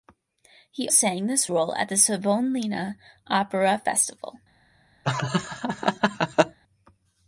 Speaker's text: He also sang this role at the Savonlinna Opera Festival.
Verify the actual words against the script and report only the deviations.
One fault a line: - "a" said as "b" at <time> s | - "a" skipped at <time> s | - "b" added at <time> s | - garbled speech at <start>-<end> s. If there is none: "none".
- "also" skipped at 0.9 s